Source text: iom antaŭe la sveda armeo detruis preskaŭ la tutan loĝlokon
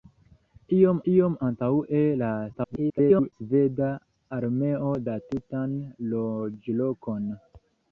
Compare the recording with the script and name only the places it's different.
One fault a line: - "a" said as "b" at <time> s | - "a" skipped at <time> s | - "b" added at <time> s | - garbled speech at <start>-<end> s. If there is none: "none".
- "iom" added at 1.1 s
- garbled speech at 2.5-3.3 s
- "detruis preskaŭ" skipped at 4.9 s